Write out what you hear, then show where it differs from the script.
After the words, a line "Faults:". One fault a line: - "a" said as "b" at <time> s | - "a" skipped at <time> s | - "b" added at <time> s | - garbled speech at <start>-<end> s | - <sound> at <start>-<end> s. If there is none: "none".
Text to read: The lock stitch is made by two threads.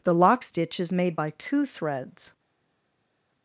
The lock stitch is made by two threads.
Faults:
none